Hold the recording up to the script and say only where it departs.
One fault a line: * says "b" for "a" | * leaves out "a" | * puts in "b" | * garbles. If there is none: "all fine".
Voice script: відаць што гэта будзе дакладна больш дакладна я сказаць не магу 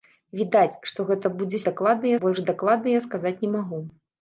all fine